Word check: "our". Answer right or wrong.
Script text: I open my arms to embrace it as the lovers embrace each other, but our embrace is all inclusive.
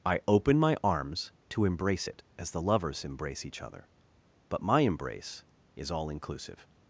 wrong